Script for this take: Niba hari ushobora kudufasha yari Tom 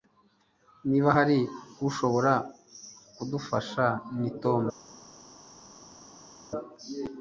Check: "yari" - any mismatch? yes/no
yes